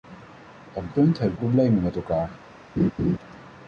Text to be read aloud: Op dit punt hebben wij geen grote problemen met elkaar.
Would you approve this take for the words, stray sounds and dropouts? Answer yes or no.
no